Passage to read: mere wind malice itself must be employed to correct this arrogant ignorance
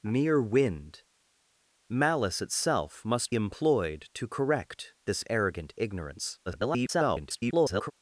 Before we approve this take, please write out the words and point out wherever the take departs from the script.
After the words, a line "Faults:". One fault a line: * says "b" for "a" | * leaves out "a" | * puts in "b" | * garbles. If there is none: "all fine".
mere wind malice itself must employed to correct this arrogant ignorance [garbled]
Faults:
* leaves out "be"
* garbles